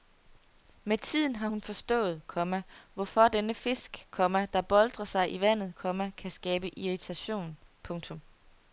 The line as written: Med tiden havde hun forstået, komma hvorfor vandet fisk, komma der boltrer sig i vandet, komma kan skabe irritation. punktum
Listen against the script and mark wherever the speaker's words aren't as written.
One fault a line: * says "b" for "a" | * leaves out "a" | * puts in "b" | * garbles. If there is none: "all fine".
* says "har" for "havde"
* says "denne" for "vandet"